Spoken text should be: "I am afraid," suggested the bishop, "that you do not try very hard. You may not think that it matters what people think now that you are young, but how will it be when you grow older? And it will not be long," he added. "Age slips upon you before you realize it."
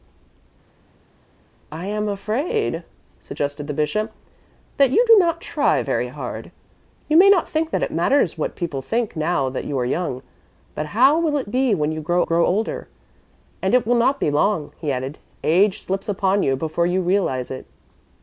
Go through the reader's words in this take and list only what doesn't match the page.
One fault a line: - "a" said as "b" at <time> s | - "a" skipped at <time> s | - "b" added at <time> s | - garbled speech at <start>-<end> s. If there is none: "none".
- "grow" added at 12.2 s